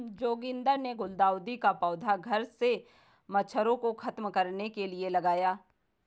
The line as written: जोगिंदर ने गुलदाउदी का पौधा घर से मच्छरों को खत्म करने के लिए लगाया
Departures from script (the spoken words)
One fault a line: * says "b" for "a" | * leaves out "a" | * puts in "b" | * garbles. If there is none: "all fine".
all fine